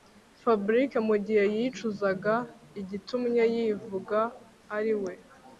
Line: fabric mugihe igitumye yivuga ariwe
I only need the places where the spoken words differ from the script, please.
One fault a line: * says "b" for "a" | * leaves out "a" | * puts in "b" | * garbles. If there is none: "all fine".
* puts in "yicuzaga"